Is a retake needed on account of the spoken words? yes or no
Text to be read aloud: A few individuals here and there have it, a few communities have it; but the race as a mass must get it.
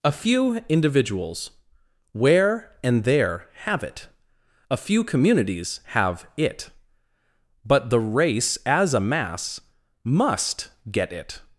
yes